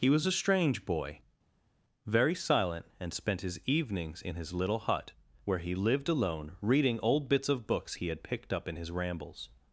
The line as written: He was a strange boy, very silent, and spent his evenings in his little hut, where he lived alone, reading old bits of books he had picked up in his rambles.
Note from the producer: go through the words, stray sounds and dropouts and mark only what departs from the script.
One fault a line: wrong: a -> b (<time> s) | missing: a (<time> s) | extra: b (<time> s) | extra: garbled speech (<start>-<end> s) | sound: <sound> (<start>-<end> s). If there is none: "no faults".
no faults